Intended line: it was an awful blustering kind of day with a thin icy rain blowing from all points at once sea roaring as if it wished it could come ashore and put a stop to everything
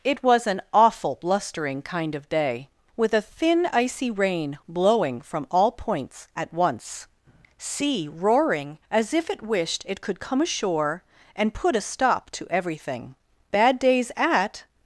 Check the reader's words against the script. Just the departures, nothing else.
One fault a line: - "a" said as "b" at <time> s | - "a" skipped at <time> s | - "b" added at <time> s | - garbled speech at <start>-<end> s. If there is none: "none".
- "bad days at" added at 13.5 s